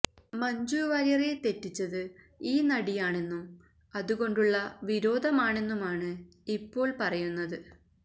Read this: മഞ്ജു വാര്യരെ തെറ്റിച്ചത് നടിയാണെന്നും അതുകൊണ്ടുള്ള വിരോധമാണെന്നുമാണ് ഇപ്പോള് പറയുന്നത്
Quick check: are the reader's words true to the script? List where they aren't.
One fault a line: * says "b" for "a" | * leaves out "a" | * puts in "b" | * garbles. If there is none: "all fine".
* puts in "ഈ"